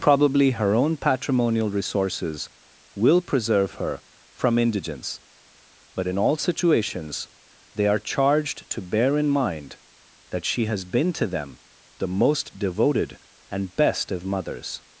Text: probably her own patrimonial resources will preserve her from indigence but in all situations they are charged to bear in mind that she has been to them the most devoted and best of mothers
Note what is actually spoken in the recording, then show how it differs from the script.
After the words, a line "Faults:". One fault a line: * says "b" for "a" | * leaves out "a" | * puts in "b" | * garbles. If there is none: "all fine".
probably her own patrimonial resources will preserve her from indigence but in all situations they are charged to bear in mind that she has been to them the most devoted and best of mothers
Faults:
all fine